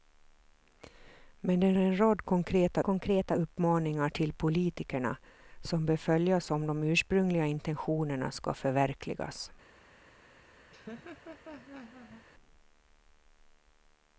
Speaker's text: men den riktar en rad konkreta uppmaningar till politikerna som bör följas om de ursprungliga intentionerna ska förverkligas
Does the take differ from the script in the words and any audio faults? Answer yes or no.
yes